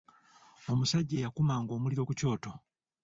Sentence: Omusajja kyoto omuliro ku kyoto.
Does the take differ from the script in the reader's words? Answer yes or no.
yes